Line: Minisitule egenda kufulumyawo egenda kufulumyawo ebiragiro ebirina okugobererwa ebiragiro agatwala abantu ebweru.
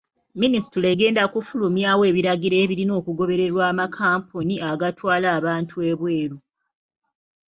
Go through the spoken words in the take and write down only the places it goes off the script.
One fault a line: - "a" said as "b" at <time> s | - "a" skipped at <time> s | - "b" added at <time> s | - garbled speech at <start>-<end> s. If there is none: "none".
- "egenda kufulumyawo" skipped at 2.0 s
- "ebiragiro" said as "amakampuni" at 3.7 s